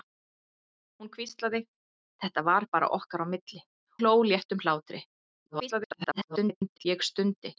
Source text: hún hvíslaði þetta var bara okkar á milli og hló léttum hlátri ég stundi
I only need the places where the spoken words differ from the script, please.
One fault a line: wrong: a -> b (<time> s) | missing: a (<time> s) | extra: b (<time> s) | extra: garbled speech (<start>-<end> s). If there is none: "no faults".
missing: og (3.6 s)
extra: garbled speech (5.5-6.9 s)